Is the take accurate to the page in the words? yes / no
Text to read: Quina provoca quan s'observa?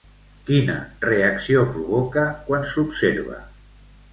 no